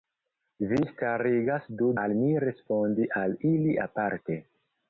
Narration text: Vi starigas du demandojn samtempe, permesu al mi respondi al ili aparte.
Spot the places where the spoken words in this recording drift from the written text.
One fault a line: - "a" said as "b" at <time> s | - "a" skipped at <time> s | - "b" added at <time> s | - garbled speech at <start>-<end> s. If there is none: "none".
- "demandojn samtempe permesu" skipped at 1.9 s